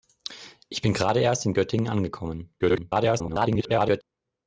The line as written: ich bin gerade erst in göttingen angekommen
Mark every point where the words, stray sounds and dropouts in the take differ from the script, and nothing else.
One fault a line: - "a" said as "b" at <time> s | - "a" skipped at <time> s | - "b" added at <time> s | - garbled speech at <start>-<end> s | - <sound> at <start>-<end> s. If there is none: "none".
- garbled speech at 2.6-4.0 s